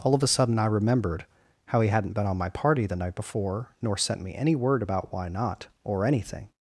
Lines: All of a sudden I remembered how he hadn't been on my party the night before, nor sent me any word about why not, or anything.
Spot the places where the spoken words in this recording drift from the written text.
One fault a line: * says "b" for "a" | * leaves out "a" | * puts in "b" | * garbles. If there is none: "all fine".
all fine